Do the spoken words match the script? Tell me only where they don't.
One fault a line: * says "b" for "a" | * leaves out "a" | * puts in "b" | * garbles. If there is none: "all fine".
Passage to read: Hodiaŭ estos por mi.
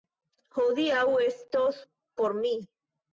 all fine